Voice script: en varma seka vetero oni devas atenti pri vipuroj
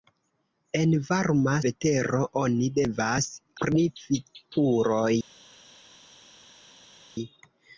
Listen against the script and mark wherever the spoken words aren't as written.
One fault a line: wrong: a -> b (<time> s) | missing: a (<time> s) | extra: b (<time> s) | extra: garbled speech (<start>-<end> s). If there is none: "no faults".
missing: seka (1.5 s)
missing: atenti (3.3 s)